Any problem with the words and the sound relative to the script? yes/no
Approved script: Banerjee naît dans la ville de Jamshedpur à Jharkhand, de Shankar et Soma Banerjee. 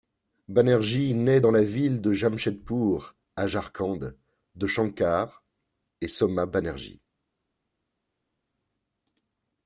no